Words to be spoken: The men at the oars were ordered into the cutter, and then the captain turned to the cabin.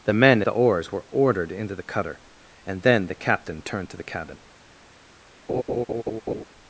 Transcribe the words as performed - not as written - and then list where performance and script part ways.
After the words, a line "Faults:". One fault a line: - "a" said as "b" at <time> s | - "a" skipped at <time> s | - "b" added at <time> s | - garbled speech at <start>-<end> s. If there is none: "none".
The men at the oars were ordered into the cutter, and then the captain turned to the cabin.
Faults:
none